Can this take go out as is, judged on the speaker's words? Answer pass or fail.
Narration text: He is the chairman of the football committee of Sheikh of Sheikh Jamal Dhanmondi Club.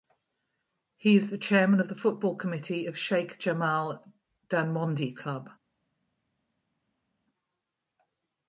fail